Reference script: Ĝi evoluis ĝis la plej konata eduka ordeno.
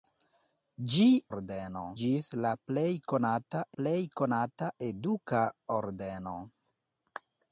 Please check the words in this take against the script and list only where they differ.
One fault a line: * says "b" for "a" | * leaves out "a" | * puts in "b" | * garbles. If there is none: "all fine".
* says "ordeno" for "evoluis"
* puts in "plej konata"